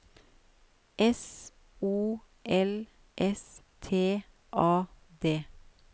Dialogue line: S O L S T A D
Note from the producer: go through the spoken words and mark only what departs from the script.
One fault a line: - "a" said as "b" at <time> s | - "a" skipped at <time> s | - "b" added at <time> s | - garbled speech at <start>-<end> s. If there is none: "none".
none